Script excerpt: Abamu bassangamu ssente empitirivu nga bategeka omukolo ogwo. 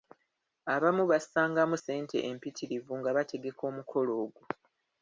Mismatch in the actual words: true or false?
false